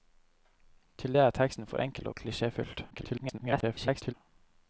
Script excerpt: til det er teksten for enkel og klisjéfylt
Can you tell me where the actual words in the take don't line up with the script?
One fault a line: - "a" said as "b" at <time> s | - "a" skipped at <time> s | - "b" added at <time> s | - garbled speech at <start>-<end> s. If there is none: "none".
- garbled speech at 2.9-4.1 s